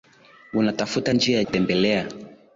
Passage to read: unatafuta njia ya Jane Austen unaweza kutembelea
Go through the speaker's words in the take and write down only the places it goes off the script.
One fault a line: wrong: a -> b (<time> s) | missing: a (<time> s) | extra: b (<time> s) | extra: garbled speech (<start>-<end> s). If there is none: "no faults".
missing: Jane Austen unaweza (1.4 s)